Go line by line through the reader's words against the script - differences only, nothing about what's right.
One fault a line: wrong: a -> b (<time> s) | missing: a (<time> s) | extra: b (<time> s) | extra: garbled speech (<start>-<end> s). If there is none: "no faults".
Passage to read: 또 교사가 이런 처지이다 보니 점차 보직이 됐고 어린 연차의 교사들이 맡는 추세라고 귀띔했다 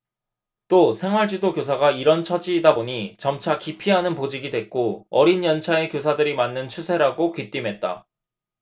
extra: 생활지도 (0.9 s)
extra: 기피하는 (3.6 s)